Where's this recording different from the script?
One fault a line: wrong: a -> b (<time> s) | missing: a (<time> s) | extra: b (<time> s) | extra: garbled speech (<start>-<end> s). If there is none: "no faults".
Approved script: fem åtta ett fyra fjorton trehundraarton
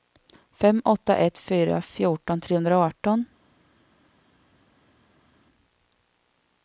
no faults